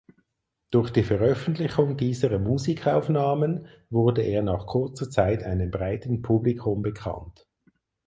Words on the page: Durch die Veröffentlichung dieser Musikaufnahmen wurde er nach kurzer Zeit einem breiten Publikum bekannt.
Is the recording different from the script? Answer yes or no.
no